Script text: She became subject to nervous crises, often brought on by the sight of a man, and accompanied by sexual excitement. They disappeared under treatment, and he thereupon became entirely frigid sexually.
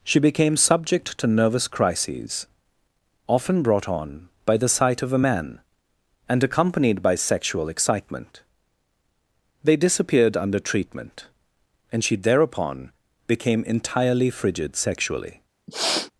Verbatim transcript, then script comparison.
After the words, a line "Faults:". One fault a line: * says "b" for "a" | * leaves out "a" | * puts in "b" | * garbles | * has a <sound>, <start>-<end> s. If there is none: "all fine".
She became subject to nervous crises, often brought on by the sight of a man, and accompanied by sexual excitement. They disappeared under treatment, and she thereupon became entirely frigid sexually.
Faults:
* says "she" for "he"
* has a sniff, 15.7-16.1 s